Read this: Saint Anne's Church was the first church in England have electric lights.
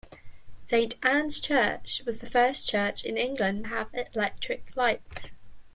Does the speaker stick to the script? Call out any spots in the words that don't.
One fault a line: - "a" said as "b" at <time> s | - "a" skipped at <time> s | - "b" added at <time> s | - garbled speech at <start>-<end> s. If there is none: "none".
none